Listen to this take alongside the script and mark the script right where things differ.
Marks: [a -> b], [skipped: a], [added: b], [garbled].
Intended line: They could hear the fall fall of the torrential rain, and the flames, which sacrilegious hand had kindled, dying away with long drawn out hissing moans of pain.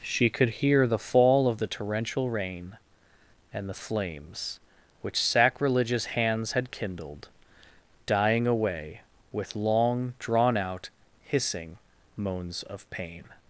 [They -> She] could hear the fall [skipped: fall] of the torrential rain, and the flames, which sacrilegious [hand -> hands] had kindled, dying away with long drawn out hissing moans of pain.